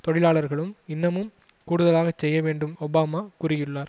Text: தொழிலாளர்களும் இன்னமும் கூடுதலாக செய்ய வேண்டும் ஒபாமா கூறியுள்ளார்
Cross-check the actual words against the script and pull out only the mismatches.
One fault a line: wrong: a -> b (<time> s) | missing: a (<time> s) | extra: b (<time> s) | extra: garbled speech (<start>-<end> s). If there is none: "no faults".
no faults